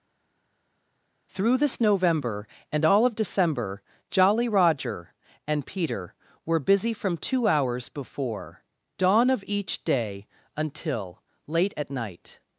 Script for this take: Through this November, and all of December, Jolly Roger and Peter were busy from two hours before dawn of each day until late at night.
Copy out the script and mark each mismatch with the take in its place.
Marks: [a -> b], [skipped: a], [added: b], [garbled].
Through this November, and all of December, Jolly Roger and Peter were busy from two hours before dawn of each day until late at night.